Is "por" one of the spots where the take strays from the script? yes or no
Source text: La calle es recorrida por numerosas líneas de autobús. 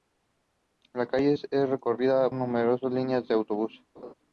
yes